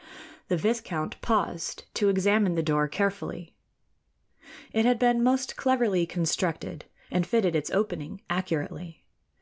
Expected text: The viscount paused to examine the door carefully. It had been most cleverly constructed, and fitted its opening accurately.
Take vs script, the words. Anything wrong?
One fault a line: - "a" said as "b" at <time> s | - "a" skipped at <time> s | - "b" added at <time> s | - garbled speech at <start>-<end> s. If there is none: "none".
none